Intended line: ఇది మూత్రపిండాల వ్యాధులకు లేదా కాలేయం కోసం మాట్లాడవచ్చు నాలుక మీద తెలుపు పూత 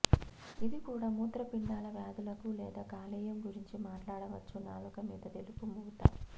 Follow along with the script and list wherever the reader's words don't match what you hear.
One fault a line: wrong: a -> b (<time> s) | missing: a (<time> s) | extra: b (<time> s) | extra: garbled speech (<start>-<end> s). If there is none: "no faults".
extra: కూడా (0.8 s)
wrong: కోసం -> గురించి (3.5 s)